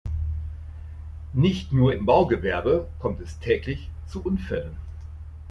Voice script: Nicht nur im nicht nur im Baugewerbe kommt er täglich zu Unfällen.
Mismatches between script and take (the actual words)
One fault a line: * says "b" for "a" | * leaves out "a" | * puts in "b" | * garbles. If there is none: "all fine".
* leaves out "nicht nur im"
* says "es" for "er"